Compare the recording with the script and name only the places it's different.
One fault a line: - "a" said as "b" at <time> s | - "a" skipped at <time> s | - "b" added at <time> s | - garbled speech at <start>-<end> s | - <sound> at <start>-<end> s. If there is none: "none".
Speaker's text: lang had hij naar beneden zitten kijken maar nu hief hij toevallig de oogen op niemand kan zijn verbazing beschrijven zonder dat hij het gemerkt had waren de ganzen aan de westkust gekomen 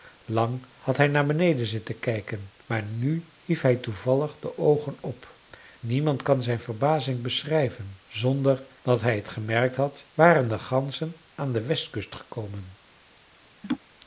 - laugh at 13.6-13.8 s